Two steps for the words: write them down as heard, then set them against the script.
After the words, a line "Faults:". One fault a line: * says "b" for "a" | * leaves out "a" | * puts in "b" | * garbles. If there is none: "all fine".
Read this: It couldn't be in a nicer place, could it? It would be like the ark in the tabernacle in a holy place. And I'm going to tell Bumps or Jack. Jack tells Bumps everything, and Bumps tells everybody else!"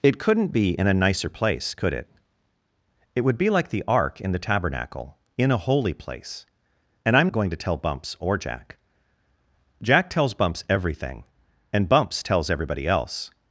It couldn't be in a nicer place, could it? It would be like the ark in the tabernacle in a holy place. And I'm going to tell Bumps or Jack. Jack tells Bumps everything, and Bumps tells everybody else!"
Faults:
all fine